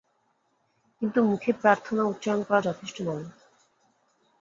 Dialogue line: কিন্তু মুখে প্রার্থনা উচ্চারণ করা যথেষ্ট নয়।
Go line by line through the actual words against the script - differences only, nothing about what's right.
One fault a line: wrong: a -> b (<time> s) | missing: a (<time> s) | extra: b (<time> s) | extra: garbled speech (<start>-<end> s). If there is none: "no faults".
no faults